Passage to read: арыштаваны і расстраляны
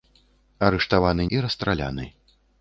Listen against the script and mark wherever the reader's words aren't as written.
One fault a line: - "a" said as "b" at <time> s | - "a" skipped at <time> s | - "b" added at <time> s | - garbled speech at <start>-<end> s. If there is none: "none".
none